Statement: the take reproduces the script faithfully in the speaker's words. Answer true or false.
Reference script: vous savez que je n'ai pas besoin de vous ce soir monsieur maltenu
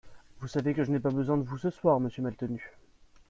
true